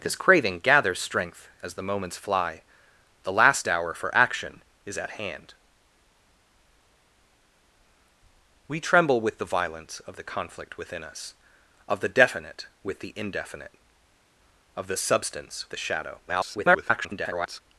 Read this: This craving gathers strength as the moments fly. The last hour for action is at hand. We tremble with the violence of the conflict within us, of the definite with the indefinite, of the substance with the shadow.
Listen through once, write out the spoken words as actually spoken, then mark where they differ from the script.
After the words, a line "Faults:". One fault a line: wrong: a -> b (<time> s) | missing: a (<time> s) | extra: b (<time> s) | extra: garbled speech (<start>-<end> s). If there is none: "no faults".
This craving gathers strength as the moments fly. The last hour for action is at hand. We tremble with the violence of the conflict within us, of the definite with the indefinite, of the substance the shadow. [garbled]
Faults:
missing: with (15.7 s)
extra: garbled speech (16.3-17.6 s)